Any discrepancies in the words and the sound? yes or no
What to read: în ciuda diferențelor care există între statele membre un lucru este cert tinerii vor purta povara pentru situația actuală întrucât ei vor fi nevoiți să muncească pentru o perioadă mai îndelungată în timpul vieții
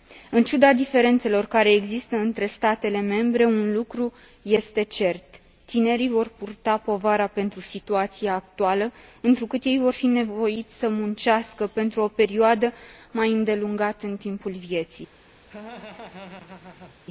yes